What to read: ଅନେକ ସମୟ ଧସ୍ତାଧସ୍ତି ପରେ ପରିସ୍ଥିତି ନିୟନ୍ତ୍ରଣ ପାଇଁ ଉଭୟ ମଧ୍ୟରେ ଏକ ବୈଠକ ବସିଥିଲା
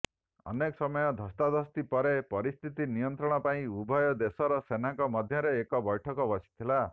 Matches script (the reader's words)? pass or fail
fail